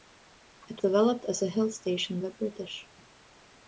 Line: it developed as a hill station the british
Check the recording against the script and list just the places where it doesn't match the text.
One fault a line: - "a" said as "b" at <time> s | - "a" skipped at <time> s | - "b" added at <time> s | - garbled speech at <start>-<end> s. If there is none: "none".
none